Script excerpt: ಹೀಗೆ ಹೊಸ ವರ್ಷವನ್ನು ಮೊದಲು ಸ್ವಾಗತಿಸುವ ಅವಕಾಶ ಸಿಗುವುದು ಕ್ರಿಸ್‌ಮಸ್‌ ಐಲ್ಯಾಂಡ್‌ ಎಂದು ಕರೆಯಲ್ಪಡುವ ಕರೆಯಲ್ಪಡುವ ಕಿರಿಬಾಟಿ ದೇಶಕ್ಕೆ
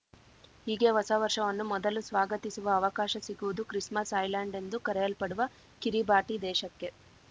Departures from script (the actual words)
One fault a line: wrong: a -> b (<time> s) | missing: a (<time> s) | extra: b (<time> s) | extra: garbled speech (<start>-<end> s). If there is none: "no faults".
missing: ಕರೆಯಲ್ಪಡುವ (5.5 s)